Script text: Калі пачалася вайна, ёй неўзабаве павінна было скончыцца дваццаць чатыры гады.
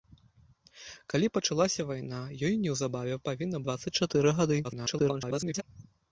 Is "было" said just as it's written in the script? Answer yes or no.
no